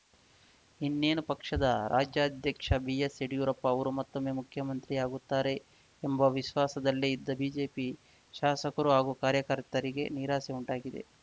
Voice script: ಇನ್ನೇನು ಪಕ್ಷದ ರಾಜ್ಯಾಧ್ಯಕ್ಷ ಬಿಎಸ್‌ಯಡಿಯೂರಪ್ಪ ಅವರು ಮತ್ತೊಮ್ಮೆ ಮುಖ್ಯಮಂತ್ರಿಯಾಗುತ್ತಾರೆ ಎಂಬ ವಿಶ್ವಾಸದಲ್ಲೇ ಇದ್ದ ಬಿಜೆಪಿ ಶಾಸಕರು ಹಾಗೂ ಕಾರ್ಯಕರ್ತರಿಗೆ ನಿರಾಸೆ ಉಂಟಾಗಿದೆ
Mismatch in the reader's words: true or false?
false